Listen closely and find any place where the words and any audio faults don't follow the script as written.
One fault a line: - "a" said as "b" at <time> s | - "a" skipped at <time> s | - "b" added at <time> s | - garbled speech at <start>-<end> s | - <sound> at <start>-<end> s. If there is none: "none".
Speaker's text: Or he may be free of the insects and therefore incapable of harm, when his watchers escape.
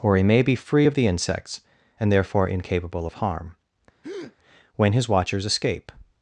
- breath at 4.0-4.4 s